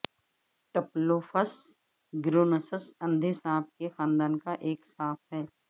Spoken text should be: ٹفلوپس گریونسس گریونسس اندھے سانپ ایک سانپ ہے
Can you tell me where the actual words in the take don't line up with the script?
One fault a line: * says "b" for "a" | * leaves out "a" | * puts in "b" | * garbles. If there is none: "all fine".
* leaves out "گریونسس"
* puts in "کے خاندان کا"